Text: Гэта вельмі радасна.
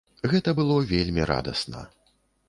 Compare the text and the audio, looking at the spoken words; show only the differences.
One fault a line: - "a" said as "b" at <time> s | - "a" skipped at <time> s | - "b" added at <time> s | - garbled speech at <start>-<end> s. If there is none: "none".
- "было" added at 0.6 s